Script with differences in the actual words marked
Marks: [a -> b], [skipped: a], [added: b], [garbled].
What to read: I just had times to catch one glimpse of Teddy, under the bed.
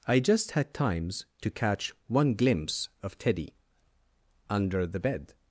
I just had times to catch one glimpse of Teddy, under the bed.